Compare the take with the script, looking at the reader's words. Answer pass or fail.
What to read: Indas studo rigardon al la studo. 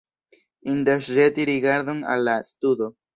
fail